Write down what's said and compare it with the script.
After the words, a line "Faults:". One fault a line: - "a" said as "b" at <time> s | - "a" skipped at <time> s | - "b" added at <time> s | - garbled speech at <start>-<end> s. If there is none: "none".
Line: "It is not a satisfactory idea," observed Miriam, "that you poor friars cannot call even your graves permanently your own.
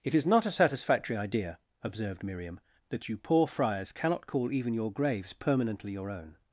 "It is not a satisfactory idea," observed Miriam, "that you poor friars cannot call even your graves permanently your own.
Faults:
none